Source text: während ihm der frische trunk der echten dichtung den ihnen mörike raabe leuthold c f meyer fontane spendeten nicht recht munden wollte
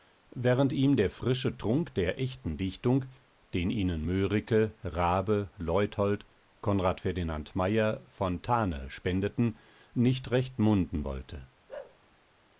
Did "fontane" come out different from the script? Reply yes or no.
no